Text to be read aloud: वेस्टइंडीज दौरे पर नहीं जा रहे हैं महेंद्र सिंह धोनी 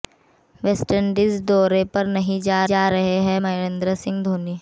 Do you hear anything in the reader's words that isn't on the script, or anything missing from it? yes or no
yes